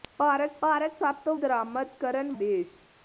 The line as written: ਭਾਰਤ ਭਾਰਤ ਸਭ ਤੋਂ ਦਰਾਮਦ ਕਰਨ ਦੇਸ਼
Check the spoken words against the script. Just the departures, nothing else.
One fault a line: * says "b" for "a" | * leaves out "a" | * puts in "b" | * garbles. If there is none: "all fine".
all fine